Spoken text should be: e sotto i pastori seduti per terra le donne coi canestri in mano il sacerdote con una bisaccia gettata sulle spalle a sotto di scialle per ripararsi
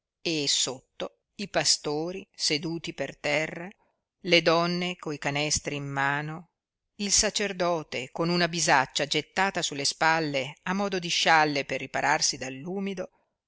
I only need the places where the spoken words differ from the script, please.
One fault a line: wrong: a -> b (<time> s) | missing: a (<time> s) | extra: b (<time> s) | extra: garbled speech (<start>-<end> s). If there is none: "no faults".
wrong: sotto -> modo (10.7 s)